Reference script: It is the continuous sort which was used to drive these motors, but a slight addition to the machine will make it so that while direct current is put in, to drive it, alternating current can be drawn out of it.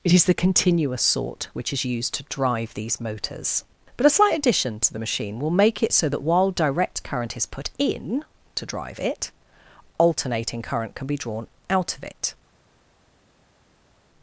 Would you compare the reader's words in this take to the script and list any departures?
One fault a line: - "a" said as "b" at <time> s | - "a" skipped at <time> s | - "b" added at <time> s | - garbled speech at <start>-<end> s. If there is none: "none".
- "was" said as "is" at 1.7 s